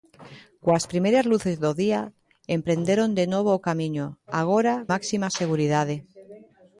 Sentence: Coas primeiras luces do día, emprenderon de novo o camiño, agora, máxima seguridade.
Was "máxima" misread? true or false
false